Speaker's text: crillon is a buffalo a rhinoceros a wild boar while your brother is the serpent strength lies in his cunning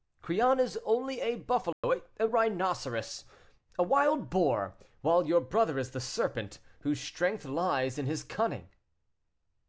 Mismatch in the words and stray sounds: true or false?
true